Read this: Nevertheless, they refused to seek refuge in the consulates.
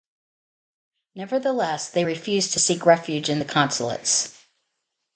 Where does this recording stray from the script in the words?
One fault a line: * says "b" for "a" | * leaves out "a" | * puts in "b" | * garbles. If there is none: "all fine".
all fine